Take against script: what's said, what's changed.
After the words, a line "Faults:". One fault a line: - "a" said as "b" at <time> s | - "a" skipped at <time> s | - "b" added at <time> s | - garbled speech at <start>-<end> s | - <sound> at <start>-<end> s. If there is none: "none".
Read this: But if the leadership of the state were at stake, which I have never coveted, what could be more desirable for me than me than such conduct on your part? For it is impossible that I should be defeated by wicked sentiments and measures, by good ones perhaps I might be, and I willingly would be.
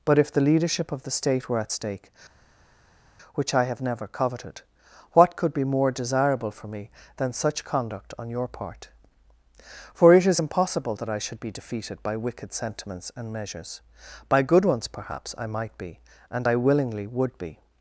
But if the leadership of the state were at stake, which I have never coveted, what could be more desirable for me than such conduct on your part? For it is impossible that I should be defeated by wicked sentiments and measures, by good ones perhaps I might be, and I willingly would be.
Faults:
- "me than" skipped at 7.3 s